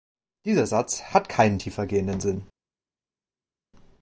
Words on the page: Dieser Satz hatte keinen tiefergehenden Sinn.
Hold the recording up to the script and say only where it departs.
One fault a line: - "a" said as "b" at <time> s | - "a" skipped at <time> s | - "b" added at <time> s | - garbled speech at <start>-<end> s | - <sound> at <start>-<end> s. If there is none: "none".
- "hatte" said as "hat" at 1.0 s